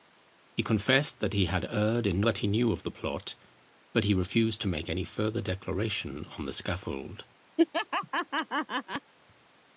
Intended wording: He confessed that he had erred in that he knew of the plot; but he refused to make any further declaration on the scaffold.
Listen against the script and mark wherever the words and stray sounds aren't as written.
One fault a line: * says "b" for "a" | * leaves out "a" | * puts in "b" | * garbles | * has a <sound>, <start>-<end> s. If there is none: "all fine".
* has a laugh, 7.6-9.1 s